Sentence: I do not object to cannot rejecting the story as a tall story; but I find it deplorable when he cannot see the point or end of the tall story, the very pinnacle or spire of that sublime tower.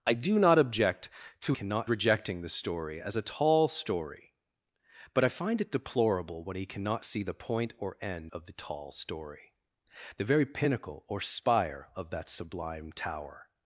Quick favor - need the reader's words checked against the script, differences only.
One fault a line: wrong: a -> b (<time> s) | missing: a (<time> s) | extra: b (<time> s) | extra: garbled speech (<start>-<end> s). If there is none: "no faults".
no faults